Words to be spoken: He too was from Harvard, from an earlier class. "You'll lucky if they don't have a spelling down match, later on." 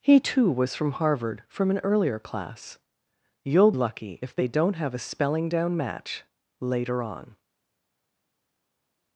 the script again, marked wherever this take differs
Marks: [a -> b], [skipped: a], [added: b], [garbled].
He too was from Harvard, from an earlier class. "You'll lucky if they don't have a spelling down match, later on."